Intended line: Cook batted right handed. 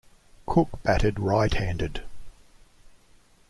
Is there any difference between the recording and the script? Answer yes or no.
no